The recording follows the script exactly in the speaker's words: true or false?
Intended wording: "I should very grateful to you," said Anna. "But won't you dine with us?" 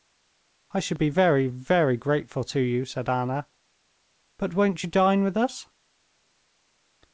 false